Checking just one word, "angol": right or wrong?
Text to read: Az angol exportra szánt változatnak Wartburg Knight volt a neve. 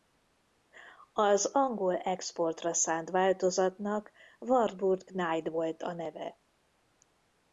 right